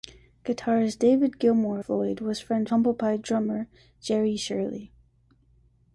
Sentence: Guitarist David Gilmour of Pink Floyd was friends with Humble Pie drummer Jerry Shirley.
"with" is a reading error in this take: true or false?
true